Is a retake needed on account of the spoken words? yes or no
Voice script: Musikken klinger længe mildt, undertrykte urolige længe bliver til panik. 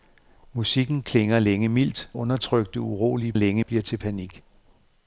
no